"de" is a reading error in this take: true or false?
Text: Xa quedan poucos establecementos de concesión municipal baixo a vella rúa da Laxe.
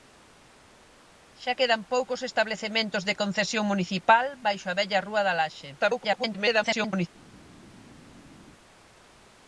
false